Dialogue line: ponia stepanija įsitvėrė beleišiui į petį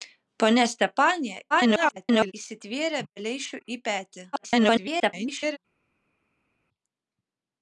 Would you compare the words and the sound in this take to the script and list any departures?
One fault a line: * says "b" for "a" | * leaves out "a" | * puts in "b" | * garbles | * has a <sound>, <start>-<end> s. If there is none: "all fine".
* garbles
* garbles